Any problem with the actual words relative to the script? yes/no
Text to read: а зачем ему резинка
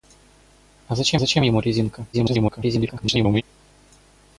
yes